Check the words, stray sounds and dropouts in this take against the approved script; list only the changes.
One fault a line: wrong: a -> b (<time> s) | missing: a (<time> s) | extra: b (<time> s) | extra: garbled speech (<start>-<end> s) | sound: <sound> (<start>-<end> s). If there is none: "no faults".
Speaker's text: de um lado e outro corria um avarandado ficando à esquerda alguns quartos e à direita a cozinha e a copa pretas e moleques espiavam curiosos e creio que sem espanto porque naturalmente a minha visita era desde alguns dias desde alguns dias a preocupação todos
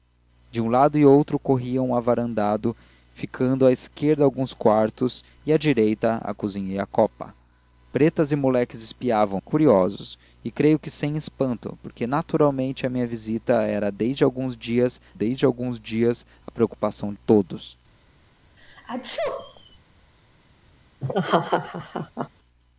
sound: sneeze (18.6-19.8 s)
sound: laugh (21.0-22.3 s)